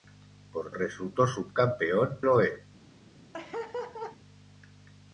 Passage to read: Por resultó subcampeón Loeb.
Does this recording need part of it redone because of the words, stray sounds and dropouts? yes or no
yes